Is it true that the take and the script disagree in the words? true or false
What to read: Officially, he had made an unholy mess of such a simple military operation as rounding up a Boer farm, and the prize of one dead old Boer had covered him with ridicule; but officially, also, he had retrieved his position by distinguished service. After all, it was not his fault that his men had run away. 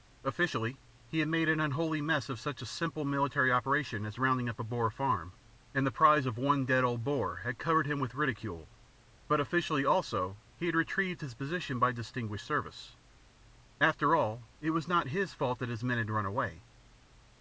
false